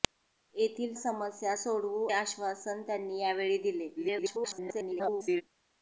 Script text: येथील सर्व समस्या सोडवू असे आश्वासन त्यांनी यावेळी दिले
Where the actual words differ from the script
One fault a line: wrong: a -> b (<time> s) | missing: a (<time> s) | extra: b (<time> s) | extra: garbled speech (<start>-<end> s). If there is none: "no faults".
missing: सर्व (0.9 s)
missing: असे (2.1 s)
extra: garbled speech (4.0-5.4 s)